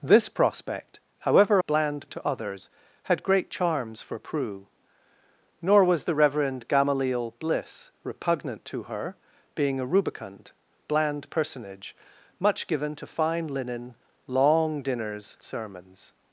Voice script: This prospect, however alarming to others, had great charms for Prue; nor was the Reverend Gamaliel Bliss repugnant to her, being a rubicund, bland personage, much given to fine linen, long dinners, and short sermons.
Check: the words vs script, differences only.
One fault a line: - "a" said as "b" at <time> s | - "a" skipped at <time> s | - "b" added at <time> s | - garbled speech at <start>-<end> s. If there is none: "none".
- "alarming" said as "bland" at 1.7 s
- "and short" skipped at 15.4 s